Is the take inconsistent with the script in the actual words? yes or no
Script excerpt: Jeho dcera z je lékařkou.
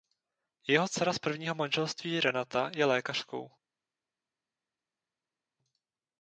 yes